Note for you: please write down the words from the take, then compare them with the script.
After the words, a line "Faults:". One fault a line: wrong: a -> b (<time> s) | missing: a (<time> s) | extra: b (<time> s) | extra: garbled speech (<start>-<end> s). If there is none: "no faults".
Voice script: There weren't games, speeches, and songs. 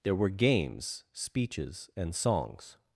There were games, speeches, and songs.
Faults:
wrong: weren't -> were (0.1 s)